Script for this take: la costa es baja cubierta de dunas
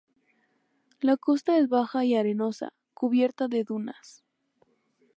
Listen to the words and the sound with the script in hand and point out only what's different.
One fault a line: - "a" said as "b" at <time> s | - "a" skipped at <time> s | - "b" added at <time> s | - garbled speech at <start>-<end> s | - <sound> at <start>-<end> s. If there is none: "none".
- "y arenosa" added at 2.0 s